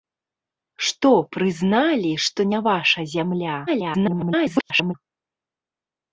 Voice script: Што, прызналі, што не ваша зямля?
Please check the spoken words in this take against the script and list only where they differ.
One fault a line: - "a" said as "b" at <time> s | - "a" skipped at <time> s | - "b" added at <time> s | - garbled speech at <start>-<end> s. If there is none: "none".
- garbled speech at 3.7-4.9 s